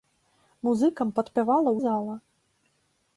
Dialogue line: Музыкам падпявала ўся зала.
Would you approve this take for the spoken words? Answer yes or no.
no